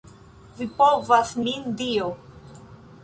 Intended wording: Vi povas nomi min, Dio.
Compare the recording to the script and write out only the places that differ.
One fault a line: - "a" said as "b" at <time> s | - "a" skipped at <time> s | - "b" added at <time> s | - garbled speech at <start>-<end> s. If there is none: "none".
- "nomi" skipped at 1.3 s